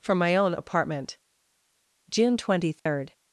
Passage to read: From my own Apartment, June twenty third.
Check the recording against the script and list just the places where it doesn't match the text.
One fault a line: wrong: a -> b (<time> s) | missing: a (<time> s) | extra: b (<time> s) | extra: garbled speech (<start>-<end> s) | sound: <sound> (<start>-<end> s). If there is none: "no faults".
sound: dropout (2.8-2.9 s)